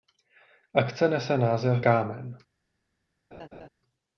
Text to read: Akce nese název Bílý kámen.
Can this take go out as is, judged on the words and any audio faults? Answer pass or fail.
fail